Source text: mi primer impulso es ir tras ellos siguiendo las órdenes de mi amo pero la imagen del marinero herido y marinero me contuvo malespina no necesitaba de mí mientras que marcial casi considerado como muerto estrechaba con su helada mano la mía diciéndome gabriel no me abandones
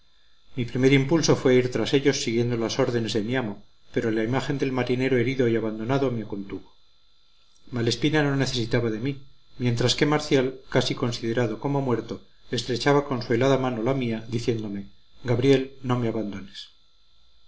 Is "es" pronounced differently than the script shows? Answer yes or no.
yes